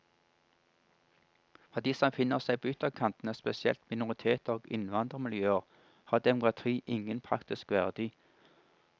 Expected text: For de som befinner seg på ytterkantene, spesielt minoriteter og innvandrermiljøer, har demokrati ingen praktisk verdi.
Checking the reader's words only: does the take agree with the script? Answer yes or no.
yes